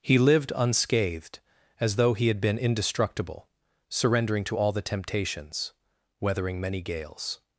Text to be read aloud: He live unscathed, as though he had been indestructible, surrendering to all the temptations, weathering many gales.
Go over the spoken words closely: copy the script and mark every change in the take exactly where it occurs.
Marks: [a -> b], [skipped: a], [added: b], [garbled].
He [live -> lived] unscathed, as though he had been indestructible, surrendering to all the temptations, weathering many gales.